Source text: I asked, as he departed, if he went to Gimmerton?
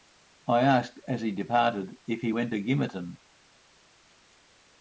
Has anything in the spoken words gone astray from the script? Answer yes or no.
no